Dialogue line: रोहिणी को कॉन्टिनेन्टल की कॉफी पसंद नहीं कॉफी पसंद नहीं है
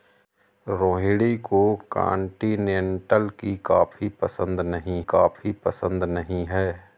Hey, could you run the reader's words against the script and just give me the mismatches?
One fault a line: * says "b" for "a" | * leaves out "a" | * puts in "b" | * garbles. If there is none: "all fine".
all fine